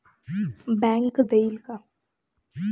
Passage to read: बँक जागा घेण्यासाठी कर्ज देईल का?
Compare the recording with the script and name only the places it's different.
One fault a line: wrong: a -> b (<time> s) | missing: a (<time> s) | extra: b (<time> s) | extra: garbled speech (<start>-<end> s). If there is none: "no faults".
missing: जागा घेण्यासाठी कर्ज (1.2 s)